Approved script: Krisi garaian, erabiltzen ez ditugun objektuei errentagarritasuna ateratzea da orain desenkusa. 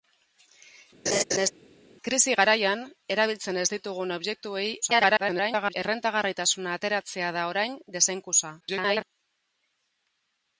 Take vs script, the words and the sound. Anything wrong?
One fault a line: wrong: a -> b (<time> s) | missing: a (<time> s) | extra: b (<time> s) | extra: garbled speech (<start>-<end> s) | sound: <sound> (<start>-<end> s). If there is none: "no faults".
sound: laugh (1.1-1.5 s)
extra: garbled speech (4.8-5.7 s)
extra: garbled speech (8.6-9.0 s)